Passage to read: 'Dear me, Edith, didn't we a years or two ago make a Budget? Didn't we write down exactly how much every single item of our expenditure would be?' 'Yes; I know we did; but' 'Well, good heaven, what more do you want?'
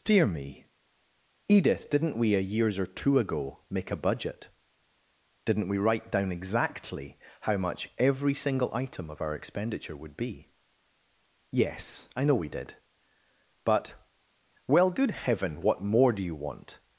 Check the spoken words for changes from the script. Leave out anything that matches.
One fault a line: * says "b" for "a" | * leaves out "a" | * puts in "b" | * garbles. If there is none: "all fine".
all fine